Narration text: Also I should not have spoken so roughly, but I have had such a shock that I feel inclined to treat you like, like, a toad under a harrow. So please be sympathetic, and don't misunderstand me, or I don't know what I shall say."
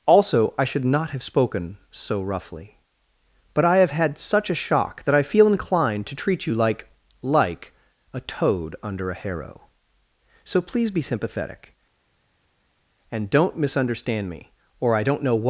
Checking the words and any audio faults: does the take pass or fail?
fail